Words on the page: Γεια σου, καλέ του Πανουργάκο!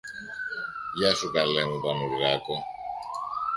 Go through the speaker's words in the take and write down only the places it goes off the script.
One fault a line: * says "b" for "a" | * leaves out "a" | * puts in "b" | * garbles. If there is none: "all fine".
* says "μου" for "του"